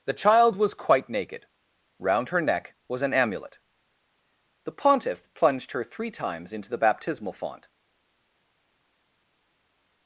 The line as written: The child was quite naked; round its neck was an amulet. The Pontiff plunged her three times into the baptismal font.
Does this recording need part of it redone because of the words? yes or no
yes